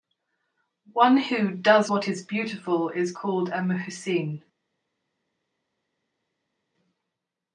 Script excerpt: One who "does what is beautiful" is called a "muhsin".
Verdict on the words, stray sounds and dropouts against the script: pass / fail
pass